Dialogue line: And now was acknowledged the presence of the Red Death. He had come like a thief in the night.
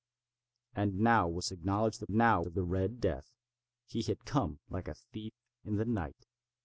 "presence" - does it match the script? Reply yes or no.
no